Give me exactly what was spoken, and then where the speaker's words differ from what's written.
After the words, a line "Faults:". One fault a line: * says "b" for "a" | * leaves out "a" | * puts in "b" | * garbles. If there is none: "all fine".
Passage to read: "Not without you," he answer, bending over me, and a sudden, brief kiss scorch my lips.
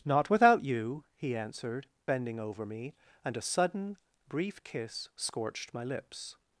"Not without you," he answered, bending over me, and a sudden, brief kiss scorched my lips.
Faults:
* says "answered" for "answer"
* says "scorched" for "scorch"